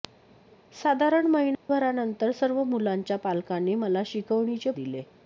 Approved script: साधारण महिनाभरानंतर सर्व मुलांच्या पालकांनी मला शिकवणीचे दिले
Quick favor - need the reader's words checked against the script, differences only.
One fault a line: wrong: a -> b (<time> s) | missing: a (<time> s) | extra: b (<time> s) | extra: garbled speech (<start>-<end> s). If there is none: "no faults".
no faults